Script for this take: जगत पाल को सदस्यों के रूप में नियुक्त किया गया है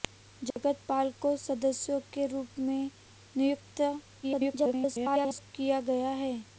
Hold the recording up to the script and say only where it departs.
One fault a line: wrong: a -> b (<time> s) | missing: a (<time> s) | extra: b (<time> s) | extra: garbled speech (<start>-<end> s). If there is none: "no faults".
extra: garbled speech (4.2-5.5 s)